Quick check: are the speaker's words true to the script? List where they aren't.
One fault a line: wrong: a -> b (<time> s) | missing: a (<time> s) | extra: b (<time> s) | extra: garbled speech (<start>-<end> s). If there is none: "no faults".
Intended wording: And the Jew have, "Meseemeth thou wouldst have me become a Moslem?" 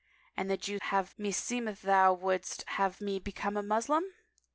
no faults